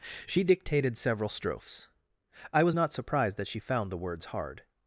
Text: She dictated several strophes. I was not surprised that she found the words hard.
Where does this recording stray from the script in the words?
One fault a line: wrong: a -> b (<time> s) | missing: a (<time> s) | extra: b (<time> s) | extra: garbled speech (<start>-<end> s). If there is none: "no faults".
no faults